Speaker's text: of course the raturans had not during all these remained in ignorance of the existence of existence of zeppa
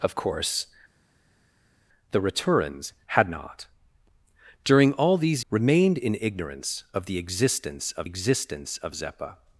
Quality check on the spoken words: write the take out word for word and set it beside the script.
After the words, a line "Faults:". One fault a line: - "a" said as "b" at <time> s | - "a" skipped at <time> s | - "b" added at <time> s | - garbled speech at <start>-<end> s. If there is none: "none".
of course the raturans had not during all these remained in ignorance of the existence of existence of zeppa
Faults:
none